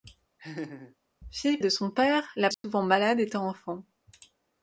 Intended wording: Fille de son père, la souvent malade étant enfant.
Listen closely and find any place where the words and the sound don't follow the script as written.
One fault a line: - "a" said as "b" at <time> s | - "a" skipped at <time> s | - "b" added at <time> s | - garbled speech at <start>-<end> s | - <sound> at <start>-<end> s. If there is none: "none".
- laugh at 0.4-1.0 s
- dropout at 2.5-2.6 s